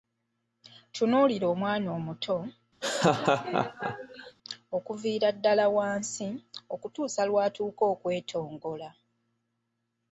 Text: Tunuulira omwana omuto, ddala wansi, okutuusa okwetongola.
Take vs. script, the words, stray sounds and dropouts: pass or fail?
fail